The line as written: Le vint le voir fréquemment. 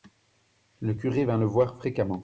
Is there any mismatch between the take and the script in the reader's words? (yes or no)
yes